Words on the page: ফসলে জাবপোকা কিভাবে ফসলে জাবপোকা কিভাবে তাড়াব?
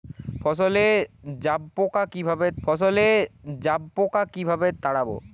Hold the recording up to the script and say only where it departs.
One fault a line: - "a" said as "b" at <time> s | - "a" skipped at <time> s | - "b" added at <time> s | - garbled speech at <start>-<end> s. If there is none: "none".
none